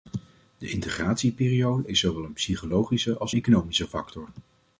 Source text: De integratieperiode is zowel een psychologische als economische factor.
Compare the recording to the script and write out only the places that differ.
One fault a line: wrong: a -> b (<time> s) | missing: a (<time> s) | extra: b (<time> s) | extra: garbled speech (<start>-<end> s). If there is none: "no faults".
no faults